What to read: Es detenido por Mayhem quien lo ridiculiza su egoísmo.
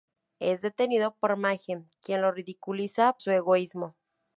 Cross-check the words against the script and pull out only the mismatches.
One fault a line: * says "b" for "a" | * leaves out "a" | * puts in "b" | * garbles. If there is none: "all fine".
all fine